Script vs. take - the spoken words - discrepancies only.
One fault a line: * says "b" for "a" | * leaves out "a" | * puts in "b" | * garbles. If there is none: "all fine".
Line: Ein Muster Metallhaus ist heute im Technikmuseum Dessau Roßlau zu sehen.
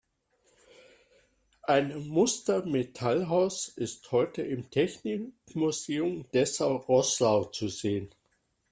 all fine